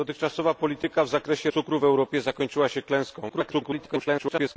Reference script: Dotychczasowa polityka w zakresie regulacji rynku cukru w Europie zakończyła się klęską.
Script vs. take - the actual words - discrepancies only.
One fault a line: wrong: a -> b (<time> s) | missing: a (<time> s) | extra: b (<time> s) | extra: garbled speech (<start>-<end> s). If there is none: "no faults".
missing: regulacji rynku (1.5 s)
extra: garbled speech (3.3-4.6 s)